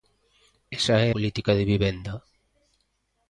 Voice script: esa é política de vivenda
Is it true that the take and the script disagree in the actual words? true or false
false